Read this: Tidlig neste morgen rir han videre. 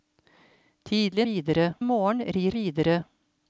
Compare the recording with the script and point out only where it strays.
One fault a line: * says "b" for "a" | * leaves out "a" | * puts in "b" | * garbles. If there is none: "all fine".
* says "videre" for "neste"
* leaves out "han"